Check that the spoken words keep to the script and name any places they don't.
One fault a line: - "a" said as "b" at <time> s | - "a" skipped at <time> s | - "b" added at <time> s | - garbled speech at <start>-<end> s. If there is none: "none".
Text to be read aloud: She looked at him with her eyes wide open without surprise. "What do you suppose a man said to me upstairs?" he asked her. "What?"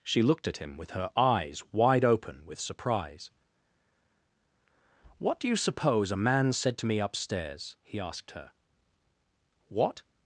- "without" said as "with" at 2.5 s